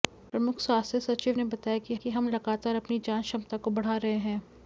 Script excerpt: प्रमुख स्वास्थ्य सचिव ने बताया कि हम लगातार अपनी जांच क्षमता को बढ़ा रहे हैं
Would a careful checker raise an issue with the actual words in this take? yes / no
yes